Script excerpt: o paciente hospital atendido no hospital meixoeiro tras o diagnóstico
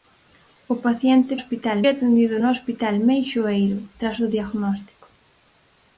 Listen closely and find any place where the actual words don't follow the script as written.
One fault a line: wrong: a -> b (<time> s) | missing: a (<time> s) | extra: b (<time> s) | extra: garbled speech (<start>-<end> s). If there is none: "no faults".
no faults